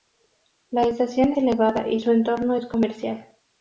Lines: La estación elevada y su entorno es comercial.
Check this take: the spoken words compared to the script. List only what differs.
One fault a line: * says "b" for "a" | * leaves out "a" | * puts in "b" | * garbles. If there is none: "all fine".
all fine